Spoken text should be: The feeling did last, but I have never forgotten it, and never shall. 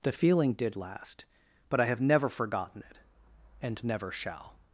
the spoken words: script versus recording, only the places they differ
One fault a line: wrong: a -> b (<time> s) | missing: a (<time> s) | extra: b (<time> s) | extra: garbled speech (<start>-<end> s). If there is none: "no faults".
no faults